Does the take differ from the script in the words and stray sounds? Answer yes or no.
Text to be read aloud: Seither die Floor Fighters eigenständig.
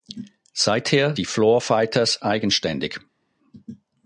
no